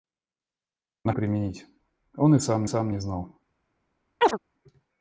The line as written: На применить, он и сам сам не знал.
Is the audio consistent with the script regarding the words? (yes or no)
yes